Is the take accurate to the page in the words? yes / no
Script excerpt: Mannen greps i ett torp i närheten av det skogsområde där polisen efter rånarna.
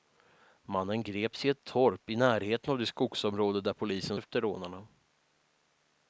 yes